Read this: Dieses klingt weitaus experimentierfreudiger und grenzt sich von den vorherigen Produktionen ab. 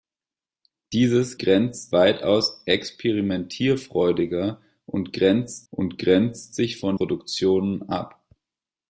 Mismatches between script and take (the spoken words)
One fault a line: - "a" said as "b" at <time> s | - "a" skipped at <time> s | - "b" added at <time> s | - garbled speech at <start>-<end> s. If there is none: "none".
- "klingt" said as "grenzt" at 1.4 s
- "und grenzt" added at 5.7 s
- "den vorherigen" skipped at 7.0 s